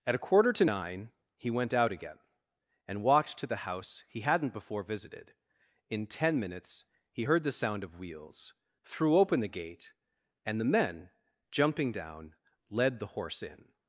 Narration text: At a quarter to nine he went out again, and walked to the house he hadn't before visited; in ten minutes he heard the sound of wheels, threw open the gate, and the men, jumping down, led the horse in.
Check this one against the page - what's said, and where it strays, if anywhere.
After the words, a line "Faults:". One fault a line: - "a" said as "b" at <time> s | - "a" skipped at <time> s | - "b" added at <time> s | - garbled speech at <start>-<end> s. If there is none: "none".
At a quarter to nine he went out again, and walked to the house he hadn't before visited; in ten minutes he heard the sound of wheels, threw open the gate, and the men, jumping down, led the horse in.
Faults:
none